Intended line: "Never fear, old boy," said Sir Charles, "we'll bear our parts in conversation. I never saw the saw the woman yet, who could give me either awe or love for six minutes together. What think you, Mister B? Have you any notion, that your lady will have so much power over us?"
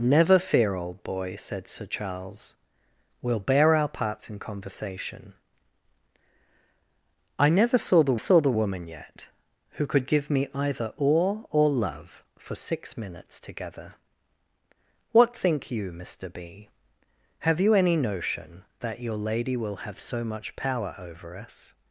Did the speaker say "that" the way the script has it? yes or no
yes